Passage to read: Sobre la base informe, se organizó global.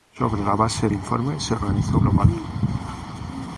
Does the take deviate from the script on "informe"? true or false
false